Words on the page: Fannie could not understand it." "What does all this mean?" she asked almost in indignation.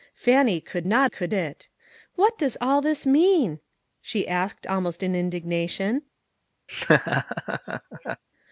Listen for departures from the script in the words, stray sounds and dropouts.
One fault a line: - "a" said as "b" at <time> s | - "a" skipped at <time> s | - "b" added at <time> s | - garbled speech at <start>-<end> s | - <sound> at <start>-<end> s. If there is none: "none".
- "understand" said as "could" at 1.1 s
- laugh at 6.7-8.2 s